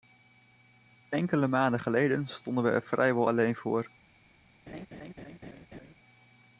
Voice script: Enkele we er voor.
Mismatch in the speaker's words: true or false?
true